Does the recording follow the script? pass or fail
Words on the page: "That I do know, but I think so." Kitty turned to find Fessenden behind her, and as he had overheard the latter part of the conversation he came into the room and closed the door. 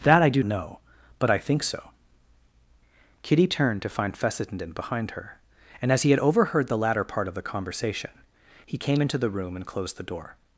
pass